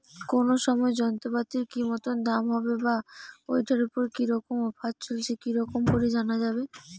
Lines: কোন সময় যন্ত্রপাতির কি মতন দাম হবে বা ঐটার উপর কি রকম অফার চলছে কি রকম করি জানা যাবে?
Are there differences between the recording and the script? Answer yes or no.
no